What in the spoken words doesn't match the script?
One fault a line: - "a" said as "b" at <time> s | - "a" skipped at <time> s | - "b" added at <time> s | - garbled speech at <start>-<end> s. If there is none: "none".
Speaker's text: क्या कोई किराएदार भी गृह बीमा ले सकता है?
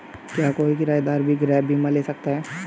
none